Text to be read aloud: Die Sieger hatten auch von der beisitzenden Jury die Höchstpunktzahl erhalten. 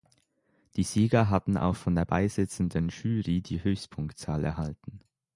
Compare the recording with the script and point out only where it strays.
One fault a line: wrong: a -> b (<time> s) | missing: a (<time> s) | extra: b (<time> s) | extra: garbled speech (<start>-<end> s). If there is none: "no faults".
no faults